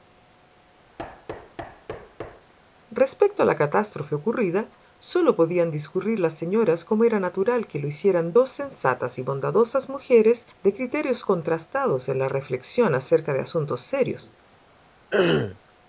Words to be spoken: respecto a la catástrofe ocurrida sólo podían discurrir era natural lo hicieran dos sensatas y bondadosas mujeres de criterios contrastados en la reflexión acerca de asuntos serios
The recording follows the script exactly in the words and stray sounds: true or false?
false